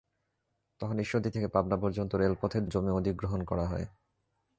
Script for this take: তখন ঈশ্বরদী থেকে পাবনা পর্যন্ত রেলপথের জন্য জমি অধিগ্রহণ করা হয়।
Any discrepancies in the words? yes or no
yes